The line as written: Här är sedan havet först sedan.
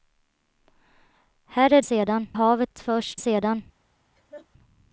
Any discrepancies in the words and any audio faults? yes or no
yes